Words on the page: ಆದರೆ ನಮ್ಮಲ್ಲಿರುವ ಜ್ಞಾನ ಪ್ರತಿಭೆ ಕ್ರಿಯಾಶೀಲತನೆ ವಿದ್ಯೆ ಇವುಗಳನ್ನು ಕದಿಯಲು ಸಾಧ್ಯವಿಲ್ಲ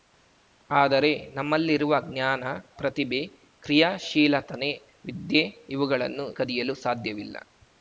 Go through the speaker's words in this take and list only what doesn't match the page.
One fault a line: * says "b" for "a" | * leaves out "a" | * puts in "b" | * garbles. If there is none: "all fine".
all fine